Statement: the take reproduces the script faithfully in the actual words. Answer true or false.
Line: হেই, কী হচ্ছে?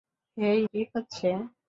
true